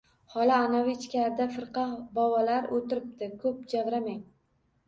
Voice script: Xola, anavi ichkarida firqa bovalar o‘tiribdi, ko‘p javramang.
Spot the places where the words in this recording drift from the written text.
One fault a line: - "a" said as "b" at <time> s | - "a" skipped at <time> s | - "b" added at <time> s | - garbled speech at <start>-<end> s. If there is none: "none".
none